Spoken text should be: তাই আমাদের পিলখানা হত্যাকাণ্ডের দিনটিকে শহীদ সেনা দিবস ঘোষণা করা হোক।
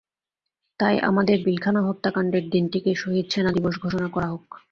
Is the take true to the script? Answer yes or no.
yes